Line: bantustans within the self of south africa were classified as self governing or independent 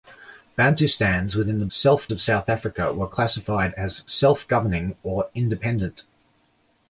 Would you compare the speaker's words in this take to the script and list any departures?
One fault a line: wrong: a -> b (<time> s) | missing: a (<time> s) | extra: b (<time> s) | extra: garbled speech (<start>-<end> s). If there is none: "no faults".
no faults